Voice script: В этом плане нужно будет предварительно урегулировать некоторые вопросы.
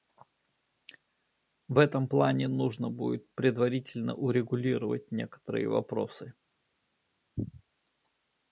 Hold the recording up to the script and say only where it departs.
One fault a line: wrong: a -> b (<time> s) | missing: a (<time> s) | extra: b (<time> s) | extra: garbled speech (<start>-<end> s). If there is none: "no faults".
no faults